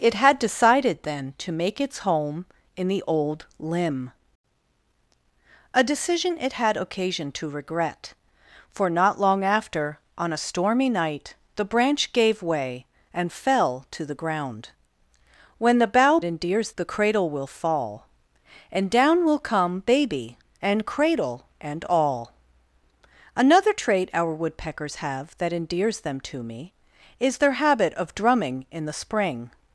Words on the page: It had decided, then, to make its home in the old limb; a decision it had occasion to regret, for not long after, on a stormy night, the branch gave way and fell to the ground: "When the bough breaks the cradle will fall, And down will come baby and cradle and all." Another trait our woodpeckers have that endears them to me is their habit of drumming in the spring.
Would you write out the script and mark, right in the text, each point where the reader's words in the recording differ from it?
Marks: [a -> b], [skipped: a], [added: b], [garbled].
It had decided, then, to make its home in the old limb; a decision it had occasion to regret, for not long after, on a stormy night, the branch gave way and fell to the ground: "When the bough [breaks -> endears] the cradle will fall, And down will come baby and cradle and all." Another trait our woodpeckers have that endears them to me is their habit of drumming in the spring.